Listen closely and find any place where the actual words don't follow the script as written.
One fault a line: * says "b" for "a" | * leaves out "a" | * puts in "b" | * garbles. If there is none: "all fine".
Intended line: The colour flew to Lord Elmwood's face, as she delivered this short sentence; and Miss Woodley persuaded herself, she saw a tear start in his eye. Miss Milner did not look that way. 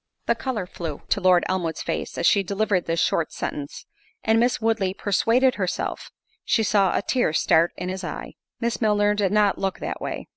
all fine